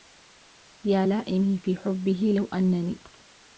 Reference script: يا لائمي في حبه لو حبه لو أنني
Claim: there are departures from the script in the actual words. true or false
true